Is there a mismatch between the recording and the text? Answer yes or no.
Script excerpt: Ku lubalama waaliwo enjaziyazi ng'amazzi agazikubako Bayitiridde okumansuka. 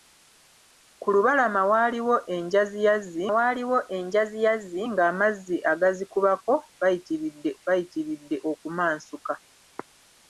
yes